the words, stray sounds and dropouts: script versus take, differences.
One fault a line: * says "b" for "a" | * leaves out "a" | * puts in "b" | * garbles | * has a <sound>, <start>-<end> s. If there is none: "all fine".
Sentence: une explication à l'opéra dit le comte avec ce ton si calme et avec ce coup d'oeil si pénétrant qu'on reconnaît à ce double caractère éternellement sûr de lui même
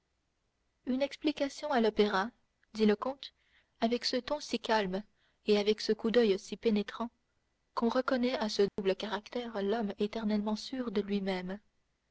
* has a dropout, 8.7-8.8 s
* puts in "l'homme"